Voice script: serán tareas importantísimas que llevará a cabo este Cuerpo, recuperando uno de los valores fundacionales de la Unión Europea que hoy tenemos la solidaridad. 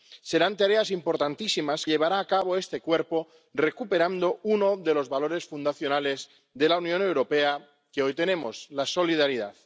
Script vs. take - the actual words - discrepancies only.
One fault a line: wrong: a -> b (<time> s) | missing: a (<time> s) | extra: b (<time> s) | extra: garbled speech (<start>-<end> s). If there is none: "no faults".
missing: que (1.9 s)